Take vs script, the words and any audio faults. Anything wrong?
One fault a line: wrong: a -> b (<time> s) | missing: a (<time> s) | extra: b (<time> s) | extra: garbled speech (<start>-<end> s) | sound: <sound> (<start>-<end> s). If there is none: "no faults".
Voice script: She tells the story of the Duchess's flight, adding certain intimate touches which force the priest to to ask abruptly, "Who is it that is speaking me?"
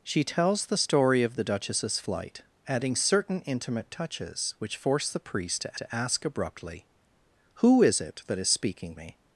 no faults